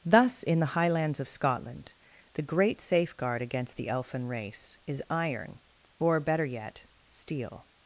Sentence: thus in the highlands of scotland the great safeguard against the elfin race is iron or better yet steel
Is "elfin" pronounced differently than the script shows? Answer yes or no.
no